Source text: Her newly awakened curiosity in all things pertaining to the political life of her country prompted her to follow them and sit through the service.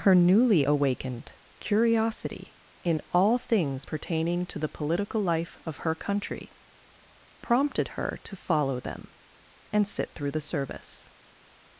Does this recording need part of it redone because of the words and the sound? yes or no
no